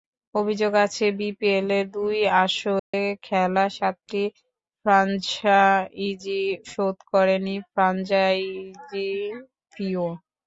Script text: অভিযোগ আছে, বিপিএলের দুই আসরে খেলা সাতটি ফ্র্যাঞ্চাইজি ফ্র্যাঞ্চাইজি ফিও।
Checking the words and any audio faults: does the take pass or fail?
fail